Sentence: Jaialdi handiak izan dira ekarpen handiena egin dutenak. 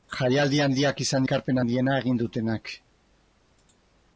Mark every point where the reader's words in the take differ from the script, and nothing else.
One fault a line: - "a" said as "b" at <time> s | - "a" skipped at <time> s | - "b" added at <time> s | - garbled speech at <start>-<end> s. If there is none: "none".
- "dira" skipped at 1.3 s